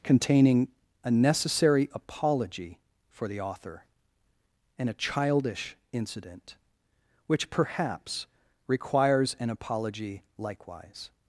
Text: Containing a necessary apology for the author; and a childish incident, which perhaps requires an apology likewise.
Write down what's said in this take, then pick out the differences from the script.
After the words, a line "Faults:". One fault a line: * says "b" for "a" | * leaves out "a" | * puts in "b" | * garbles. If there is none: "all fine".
Containing a necessary apology for the author; and a childish incident, which perhaps requires an apology likewise.
Faults:
all fine